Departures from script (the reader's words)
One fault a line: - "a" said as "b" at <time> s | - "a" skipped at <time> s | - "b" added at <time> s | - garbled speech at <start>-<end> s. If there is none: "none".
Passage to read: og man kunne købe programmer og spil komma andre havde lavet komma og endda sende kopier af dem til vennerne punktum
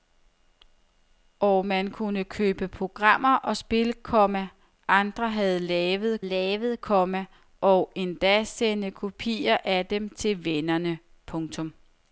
- "lavet" added at 6.2 s